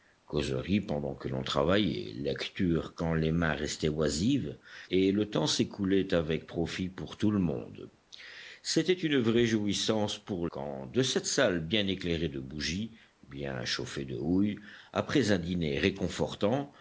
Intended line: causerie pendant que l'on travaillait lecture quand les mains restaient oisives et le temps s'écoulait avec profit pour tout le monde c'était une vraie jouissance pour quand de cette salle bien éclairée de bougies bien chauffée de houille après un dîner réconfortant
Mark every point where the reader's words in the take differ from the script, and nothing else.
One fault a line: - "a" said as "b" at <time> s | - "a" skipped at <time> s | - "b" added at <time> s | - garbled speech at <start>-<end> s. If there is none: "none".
none